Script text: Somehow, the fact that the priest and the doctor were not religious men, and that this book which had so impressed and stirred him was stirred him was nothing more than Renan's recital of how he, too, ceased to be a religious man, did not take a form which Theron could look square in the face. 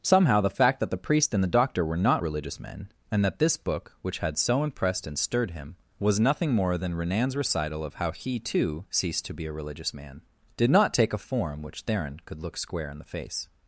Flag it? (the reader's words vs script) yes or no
yes